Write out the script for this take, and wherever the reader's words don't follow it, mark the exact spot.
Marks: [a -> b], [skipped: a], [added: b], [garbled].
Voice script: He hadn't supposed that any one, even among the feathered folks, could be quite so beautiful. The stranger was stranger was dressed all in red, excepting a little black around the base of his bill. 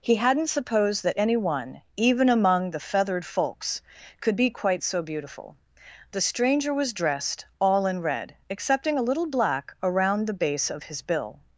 He hadn't supposed that any one, even among the feathered folks, could be quite so beautiful. The stranger was [skipped: stranger was] dressed all in red, excepting a little black around the base of his bill.